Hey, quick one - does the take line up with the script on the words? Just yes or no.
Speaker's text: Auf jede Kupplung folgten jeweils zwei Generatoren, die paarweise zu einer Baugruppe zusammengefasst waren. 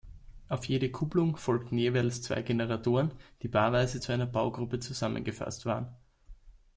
yes